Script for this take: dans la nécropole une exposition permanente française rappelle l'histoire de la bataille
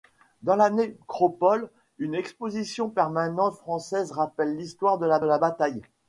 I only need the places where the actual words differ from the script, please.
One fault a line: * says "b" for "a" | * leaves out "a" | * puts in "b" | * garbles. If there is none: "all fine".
* puts in "la"